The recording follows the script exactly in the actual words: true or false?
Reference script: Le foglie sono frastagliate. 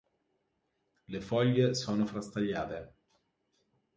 true